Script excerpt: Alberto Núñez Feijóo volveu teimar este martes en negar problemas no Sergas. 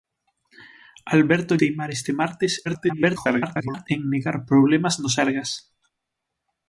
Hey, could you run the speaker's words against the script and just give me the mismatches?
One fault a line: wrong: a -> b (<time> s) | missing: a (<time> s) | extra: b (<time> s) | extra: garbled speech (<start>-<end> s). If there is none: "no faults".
missing: Núñez Feijóo volveu (1.5 s)
extra: garbled speech (2.7-3.9 s)